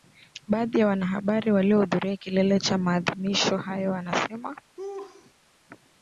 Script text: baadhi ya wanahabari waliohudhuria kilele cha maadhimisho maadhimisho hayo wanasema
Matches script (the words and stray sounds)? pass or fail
fail